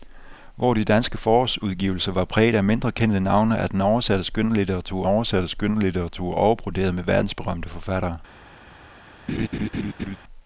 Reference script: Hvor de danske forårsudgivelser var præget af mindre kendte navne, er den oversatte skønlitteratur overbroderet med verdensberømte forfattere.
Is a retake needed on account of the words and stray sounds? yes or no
yes